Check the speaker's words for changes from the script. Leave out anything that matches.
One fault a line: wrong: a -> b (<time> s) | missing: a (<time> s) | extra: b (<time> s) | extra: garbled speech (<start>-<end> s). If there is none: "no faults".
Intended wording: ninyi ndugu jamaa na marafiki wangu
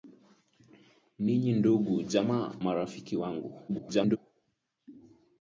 missing: na (2.5 s)
extra: garbled speech (3.7-4.2 s)